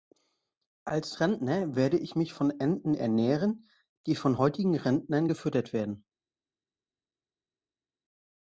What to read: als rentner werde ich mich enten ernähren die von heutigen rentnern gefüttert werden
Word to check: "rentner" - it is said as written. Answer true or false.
true